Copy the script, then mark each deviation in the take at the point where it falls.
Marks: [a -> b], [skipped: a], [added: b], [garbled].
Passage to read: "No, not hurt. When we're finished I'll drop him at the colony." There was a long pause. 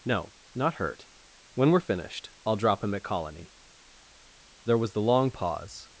"No, not hurt. When we're finished I'll drop him at [skipped: the] colony." There was [a -> the] long pause.